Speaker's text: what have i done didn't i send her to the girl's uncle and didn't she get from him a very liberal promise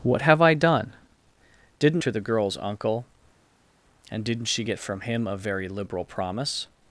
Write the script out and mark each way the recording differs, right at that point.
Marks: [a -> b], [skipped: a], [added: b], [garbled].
what have i done didn't [skipped: i send her] to the girl's uncle and didn't she get from him a very liberal promise